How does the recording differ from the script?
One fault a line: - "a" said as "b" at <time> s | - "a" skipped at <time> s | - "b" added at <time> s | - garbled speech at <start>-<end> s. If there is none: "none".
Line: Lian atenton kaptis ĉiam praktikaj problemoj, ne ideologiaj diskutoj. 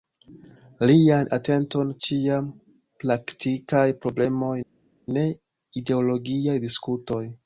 - "kaptis" skipped at 1.9 s